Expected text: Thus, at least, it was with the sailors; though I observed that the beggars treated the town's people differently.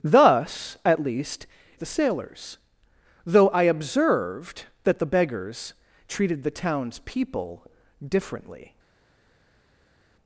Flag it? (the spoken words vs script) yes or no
yes